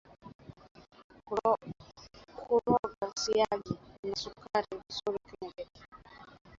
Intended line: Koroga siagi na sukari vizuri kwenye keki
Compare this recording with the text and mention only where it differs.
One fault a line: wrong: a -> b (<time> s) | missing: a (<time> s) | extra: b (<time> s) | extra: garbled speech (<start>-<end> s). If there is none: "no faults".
no faults